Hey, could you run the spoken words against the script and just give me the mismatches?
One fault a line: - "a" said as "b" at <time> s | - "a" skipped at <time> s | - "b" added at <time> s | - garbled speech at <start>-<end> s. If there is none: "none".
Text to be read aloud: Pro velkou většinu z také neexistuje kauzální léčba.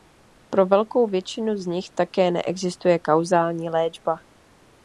- "nich" added at 1.6 s